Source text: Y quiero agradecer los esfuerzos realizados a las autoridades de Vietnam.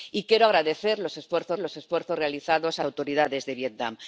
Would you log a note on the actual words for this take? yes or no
yes